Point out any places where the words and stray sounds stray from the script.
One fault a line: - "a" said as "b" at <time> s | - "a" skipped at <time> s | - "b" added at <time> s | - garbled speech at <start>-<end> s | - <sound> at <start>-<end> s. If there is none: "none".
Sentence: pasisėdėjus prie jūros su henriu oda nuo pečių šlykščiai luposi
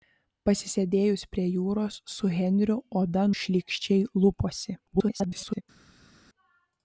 - "nuo pečių" skipped at 3.3 s
- garbled speech at 4.9-5.6 s